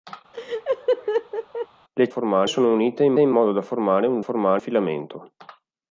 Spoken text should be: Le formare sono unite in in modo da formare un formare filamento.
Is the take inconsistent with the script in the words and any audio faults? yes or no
yes